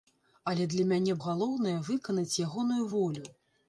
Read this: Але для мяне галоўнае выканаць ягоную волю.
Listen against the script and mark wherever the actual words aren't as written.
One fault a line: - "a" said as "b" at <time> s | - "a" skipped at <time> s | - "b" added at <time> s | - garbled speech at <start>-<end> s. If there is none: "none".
none